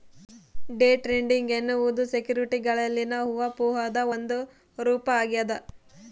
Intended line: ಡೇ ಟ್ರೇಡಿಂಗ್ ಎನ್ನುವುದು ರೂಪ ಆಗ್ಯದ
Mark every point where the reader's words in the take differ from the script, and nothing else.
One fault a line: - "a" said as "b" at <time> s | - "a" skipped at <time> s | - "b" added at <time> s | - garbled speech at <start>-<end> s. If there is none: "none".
- "ಸೆಕ್ಯುರಿಟಿಗಳಲ್ಲಿನ ಊಹಾಪೋಹದ ಒಂದು" added at 2.1 s